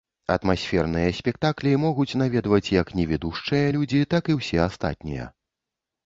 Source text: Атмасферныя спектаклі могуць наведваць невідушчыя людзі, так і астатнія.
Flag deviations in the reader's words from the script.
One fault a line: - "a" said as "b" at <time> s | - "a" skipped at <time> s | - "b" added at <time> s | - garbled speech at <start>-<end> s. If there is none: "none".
- "як" added at 2.8 s
- "ўсе" added at 4.4 s